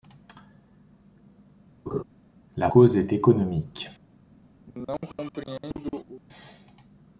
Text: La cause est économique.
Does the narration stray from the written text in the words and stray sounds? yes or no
yes